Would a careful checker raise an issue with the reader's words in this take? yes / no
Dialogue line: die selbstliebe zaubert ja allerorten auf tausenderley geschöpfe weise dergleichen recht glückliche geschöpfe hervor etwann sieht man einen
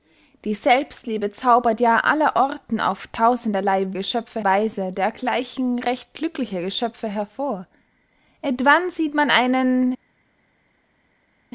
no